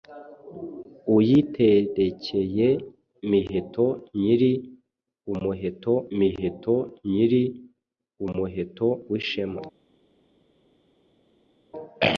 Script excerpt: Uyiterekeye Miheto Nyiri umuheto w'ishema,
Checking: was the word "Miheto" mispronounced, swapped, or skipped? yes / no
no